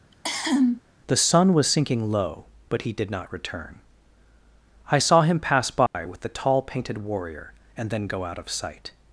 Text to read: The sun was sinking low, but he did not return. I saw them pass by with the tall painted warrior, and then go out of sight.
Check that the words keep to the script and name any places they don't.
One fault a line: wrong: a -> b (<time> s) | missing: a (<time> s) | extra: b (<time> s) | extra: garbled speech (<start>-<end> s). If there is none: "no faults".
wrong: them -> him (5.2 s)